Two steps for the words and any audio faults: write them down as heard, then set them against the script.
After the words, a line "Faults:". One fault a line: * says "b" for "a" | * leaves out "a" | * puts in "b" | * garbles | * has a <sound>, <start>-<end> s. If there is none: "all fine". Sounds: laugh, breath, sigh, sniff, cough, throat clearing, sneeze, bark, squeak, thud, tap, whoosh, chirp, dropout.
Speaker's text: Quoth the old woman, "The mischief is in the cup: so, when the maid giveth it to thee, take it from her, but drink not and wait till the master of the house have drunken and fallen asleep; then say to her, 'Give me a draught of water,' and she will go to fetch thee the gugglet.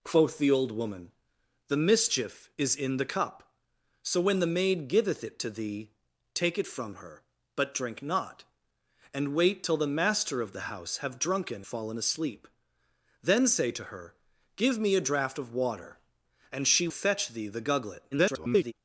Quoth the old woman, "The mischief is in the cup: so, when the maid giveth it to thee, take it from her, but drink not and wait till the master of the house have drunken fallen asleep; then say to her, 'Give me a draught of water,' and she fetch thee the gugglet. [garbled]
Faults:
* leaves out "and"
* leaves out "will go to"
* garbles